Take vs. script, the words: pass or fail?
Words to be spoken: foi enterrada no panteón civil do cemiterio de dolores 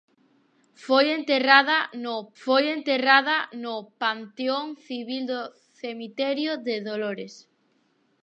fail